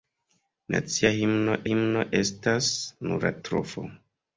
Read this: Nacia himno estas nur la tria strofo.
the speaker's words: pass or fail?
fail